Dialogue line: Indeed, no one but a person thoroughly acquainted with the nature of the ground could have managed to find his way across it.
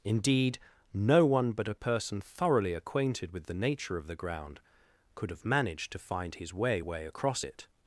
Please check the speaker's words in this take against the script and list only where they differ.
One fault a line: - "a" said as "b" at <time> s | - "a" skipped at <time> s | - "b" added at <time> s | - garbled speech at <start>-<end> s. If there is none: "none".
- "way" added at 6.8 s